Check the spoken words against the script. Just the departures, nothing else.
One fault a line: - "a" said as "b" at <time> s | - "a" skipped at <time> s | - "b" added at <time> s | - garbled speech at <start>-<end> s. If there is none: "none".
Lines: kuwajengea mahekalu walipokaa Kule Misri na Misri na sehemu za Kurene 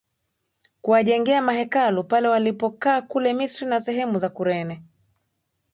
- "pale" added at 2.0 s
- "Misri na" skipped at 3.8 s